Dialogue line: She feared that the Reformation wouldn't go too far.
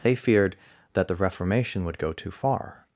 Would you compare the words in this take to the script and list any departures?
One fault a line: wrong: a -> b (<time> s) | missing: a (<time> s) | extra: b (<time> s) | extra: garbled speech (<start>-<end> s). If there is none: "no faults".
wrong: She -> They (0.0 s)
wrong: wouldn't -> would (1.9 s)